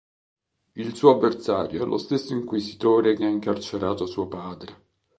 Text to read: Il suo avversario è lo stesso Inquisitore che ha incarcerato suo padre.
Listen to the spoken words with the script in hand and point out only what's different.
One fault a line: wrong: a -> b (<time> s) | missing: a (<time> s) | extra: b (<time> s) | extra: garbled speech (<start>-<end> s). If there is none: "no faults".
no faults